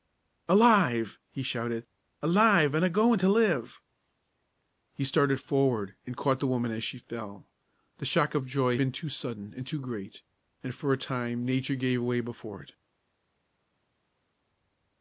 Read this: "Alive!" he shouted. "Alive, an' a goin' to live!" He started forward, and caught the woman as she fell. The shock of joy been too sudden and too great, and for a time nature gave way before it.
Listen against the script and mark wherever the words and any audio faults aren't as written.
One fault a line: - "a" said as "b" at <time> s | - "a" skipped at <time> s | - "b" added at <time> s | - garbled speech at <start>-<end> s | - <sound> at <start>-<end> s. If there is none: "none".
none